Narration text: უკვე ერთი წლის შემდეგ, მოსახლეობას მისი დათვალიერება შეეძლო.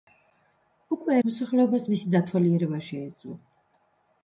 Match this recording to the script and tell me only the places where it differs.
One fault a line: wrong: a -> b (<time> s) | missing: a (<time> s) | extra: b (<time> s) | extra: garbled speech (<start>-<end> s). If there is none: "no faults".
missing: ერთი წლის შემდეგ (1.2 s)